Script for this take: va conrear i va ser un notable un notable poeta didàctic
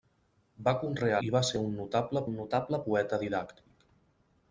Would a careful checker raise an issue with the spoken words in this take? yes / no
no